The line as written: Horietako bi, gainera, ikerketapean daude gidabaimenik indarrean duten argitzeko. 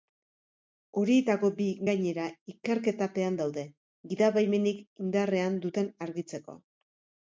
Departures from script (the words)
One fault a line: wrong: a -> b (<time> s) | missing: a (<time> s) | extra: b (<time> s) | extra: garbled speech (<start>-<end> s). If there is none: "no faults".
no faults